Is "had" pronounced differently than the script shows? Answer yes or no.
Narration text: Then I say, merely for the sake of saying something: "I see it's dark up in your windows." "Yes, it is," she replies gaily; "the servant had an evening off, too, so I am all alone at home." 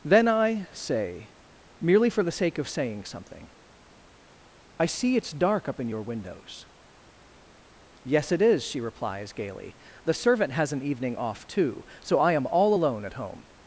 yes